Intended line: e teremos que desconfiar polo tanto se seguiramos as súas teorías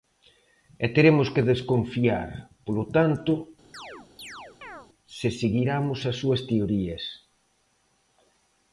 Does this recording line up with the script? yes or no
yes